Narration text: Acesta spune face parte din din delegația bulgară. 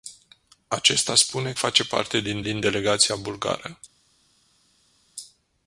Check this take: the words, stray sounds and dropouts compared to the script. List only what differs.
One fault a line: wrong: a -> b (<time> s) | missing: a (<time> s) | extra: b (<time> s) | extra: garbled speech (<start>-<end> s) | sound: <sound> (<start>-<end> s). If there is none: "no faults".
no faults